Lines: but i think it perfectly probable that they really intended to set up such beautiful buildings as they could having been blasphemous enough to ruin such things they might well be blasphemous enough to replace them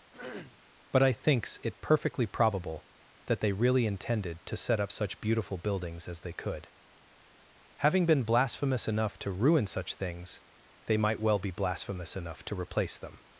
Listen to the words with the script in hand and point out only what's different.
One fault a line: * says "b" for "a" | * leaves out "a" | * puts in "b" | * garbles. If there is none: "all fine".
* says "thinks" for "think"